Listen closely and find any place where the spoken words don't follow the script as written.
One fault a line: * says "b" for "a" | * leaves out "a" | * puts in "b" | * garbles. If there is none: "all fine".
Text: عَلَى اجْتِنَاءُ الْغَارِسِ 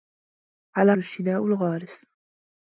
all fine